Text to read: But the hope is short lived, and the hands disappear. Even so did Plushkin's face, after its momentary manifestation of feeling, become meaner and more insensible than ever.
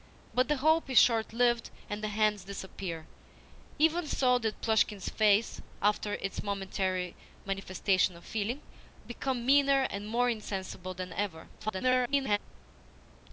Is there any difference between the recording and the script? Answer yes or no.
yes